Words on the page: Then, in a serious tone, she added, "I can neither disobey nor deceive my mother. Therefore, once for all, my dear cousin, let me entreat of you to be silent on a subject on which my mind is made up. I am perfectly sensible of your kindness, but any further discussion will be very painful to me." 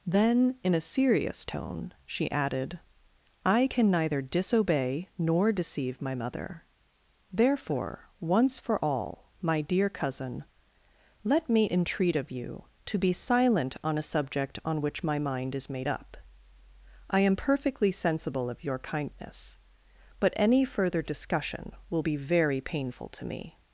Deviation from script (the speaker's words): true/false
false